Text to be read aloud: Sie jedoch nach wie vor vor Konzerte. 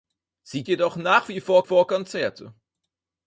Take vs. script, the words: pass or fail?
pass